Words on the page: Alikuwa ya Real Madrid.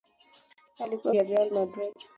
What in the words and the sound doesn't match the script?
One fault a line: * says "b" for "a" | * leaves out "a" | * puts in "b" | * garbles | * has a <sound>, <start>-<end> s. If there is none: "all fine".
all fine